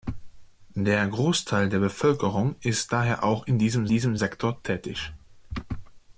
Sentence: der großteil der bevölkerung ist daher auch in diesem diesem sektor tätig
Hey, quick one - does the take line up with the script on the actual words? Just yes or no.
yes